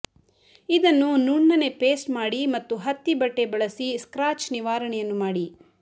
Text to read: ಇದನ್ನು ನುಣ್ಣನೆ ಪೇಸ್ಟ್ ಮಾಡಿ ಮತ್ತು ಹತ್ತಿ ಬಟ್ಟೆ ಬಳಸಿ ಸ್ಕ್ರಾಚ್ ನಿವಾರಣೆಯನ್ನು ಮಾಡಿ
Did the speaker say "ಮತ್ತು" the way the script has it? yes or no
yes